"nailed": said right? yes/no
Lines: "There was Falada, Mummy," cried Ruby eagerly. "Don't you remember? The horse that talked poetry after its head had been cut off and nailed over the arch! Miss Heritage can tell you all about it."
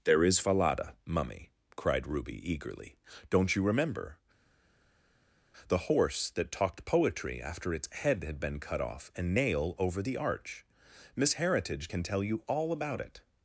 no